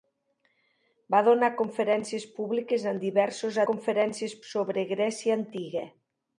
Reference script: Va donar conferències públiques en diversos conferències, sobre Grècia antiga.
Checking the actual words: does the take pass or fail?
pass